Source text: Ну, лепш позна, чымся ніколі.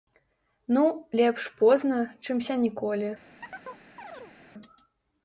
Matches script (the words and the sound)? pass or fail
fail